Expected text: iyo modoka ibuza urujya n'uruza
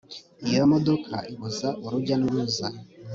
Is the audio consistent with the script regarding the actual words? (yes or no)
yes